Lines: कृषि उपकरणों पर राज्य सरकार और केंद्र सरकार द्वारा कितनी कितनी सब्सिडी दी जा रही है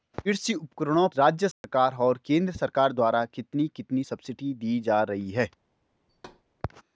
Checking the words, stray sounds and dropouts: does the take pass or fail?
fail